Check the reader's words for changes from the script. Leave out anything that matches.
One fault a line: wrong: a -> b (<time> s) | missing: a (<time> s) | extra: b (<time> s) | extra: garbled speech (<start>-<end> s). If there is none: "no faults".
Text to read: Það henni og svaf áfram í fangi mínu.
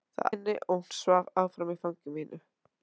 no faults